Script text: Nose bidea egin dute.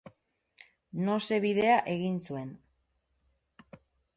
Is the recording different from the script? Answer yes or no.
yes